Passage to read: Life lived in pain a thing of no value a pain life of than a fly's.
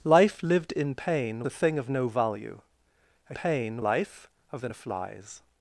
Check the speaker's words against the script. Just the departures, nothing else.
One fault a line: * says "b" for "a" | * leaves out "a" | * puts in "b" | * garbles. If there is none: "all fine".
all fine